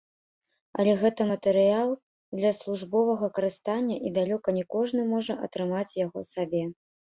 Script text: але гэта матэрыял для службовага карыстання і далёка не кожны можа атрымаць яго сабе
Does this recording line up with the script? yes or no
yes